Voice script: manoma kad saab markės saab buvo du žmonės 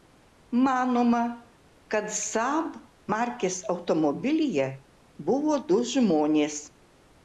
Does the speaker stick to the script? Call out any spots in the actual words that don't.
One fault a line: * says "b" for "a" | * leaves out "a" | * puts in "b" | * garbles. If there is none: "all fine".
* says "automobilyje" for "saab"